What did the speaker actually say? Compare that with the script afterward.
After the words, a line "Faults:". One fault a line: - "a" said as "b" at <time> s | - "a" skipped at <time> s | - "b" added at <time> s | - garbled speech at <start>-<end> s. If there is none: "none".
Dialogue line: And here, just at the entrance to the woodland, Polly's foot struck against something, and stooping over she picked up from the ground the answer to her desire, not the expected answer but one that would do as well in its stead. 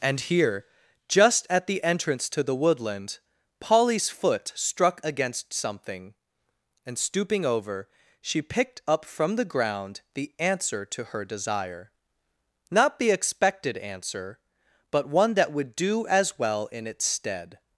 And here, just at the entrance to the woodland, Polly's foot struck against something, and stooping over she picked up from the ground the answer to her desire, not the expected answer but one that would do as well in its stead.
Faults:
none